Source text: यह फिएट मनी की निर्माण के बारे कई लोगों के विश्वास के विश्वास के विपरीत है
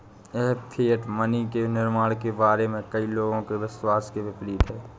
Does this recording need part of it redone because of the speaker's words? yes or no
yes